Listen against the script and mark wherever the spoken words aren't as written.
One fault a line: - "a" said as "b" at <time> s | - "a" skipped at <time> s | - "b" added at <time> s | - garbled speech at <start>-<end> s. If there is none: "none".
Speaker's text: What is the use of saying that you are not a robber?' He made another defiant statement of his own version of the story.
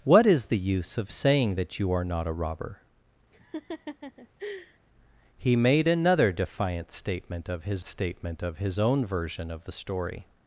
- "statement of his" added at 7.8 s